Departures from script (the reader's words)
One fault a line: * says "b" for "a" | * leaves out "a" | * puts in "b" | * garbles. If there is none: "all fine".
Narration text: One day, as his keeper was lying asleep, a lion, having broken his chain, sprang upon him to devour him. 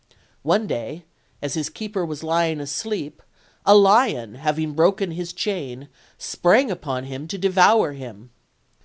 all fine